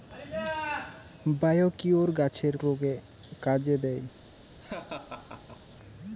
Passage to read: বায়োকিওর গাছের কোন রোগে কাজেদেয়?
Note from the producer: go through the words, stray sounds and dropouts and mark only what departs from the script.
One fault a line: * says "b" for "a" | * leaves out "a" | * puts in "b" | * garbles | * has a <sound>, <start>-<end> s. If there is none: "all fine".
* leaves out "কোন"
* has a laugh, 4.6-5.8 s